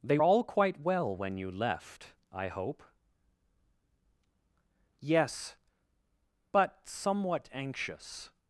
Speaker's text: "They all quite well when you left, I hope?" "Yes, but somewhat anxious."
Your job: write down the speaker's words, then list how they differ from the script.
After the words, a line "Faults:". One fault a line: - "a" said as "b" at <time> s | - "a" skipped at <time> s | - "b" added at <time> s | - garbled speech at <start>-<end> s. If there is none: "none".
"They all quite well when you left, I hope?" "Yes, but somewhat anxious."
Faults:
none